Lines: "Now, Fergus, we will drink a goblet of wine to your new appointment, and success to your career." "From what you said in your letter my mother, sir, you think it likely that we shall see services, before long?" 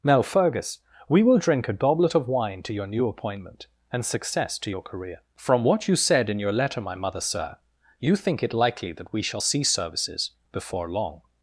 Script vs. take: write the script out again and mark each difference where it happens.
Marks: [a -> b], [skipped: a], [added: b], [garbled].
"Now, Fergus, we will drink a goblet of wine to your new appointment, and success to your career." "From what you said in your letter my mother, sir, you think it likely that we shall see services, before long?"